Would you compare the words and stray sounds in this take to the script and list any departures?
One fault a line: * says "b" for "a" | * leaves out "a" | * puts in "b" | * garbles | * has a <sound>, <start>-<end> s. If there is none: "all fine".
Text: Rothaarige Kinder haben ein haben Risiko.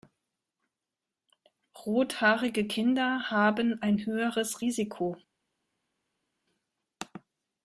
* says "höheres" for "haben"